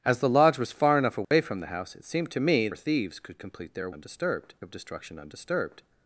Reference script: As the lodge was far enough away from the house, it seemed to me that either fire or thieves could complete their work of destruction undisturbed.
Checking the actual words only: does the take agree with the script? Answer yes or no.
no